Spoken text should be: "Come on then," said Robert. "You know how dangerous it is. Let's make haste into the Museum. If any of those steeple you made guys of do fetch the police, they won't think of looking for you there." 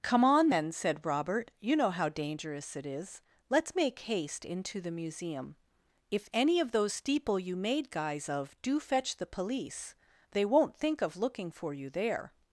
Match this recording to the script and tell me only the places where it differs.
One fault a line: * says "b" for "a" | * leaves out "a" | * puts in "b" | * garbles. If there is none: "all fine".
all fine